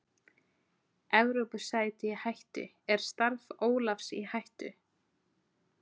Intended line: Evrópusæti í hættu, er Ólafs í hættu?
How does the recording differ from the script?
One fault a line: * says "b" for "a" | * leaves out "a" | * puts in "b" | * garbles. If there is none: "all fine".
* puts in "starf"